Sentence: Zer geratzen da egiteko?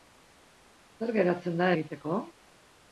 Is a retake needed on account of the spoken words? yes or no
no